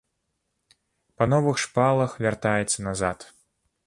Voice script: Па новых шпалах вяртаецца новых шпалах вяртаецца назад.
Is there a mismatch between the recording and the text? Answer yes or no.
yes